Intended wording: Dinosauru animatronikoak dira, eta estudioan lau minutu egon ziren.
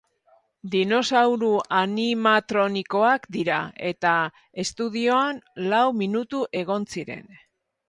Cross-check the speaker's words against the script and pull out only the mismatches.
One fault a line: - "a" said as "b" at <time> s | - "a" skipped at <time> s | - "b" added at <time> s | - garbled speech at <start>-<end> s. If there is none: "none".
none